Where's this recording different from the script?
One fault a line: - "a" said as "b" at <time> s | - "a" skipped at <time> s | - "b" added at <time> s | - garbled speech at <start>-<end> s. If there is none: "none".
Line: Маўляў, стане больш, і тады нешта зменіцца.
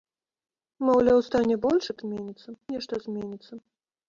- "тады" said as "зменіцца" at 2.0 s